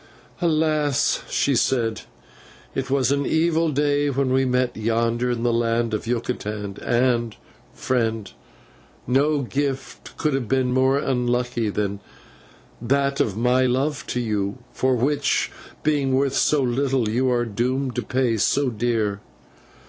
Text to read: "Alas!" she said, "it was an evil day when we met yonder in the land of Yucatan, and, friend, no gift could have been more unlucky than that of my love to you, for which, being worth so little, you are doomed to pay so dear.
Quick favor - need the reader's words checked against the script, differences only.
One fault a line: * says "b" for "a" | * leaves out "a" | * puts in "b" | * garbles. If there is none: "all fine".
all fine